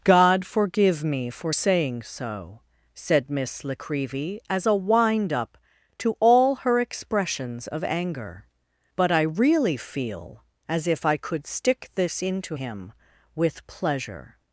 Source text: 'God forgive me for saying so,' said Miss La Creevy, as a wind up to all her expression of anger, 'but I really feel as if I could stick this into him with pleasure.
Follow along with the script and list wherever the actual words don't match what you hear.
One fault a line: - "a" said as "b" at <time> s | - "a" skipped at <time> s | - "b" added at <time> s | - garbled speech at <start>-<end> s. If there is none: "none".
- "expression" said as "expressions" at 6.8 s